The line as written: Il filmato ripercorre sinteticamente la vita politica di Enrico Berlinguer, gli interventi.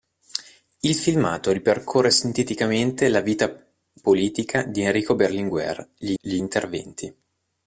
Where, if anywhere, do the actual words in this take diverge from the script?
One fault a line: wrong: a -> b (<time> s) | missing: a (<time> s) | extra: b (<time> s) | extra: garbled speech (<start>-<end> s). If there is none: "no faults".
extra: gli (6.2 s)